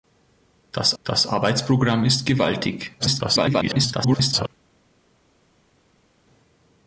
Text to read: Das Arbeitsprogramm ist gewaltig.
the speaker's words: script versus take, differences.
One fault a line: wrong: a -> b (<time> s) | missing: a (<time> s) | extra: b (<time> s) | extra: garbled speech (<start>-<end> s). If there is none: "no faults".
extra: das (1.0 s)
extra: garbled speech (3.0-4.5 s)